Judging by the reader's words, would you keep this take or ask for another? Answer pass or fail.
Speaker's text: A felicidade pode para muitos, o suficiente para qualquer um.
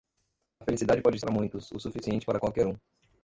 pass